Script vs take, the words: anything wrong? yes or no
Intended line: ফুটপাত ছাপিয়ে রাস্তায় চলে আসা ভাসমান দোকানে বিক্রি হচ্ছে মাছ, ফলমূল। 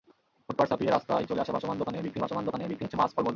yes